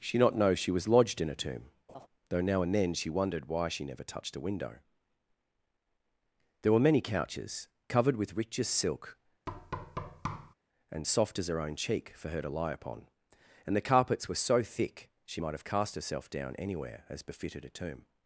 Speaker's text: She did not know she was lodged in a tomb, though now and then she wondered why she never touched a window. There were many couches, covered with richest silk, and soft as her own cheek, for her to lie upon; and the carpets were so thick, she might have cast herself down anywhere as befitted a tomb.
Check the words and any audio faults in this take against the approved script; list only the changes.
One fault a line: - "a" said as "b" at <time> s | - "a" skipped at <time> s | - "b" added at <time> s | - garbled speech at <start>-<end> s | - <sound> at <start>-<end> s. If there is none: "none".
- "did" skipped at 0.2 s
- laugh at 1.9-2.1 s
- thud at 9.5-10.5 s